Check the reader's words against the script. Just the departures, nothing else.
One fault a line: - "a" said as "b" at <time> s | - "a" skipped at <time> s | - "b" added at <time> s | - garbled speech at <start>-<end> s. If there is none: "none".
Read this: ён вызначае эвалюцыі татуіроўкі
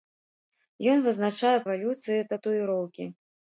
none